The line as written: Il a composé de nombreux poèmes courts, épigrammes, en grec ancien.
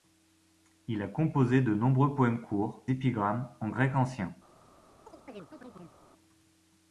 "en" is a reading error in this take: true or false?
false